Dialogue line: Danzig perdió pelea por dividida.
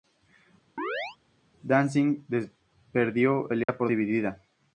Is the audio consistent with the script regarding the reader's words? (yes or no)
yes